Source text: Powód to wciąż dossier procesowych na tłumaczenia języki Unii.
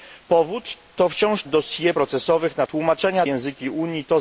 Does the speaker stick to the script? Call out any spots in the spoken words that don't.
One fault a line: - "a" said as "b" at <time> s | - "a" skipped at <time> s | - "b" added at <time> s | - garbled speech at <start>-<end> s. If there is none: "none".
none